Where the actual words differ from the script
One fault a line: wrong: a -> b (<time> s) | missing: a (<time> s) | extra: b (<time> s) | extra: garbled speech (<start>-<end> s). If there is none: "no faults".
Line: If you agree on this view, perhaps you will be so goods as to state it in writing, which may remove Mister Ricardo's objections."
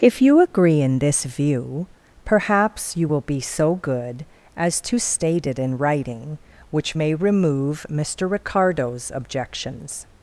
wrong: on -> in (0.8 s)
wrong: goods -> good (3.7 s)